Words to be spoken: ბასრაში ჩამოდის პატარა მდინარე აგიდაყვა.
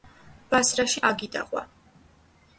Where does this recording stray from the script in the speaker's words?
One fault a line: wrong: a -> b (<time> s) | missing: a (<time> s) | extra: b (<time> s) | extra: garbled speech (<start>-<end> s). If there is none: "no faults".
missing: ჩამოდის პატარა მდინარე (1.0 s)